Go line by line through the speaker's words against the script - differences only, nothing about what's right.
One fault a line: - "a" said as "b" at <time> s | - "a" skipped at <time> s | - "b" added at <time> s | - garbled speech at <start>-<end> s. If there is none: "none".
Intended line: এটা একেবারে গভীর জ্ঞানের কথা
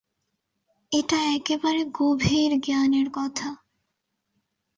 none